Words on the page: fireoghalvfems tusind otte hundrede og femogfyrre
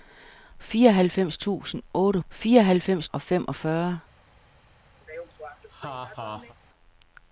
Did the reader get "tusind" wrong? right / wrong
right